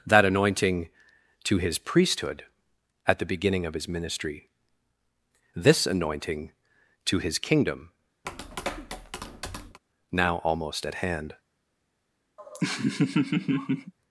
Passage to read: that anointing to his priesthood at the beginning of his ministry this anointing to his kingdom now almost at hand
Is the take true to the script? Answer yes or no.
yes